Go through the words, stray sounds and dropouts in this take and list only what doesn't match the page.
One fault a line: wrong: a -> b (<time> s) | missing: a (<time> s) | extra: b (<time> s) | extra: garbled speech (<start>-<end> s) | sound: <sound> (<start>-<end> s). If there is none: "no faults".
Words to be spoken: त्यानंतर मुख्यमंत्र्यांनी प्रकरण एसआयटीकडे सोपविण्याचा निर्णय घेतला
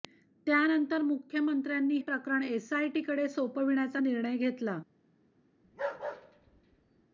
sound: bark (5.6-7.1 s)